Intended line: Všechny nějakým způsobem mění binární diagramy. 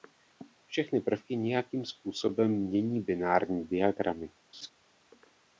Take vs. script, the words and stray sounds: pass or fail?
fail